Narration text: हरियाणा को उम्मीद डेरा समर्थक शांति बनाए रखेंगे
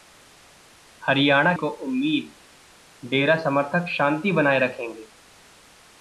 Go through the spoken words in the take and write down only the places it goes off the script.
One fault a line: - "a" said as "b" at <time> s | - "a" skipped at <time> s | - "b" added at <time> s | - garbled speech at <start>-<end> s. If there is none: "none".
none